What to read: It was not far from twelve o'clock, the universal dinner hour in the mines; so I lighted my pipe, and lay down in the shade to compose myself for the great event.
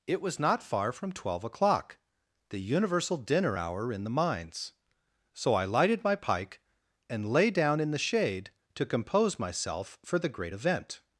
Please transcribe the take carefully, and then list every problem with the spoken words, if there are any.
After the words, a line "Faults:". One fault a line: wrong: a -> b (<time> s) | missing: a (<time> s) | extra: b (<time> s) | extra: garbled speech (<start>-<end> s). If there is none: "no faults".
It was not far from twelve o'clock, the universal dinner hour in the mines; so I lighted my pike, and lay down in the shade to compose myself for the great event.
Faults:
wrong: pipe -> pike (6.1 s)